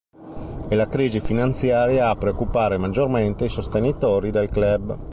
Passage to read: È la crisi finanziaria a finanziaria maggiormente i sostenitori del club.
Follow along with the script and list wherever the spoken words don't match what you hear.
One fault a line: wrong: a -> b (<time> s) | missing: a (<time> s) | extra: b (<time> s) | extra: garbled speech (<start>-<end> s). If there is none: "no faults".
wrong: finanziaria -> preoccupare (2.1 s)